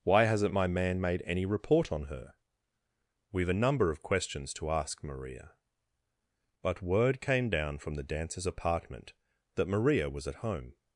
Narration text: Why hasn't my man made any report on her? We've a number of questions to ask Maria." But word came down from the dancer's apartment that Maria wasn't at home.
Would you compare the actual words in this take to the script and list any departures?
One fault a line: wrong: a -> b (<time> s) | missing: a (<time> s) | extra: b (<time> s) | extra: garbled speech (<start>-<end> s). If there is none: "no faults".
wrong: wasn't -> was (10.1 s)